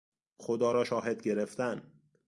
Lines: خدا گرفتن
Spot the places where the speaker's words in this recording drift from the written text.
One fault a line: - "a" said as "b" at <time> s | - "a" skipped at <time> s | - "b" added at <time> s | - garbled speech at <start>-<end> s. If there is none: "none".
- "را شاهد" added at 0.7 s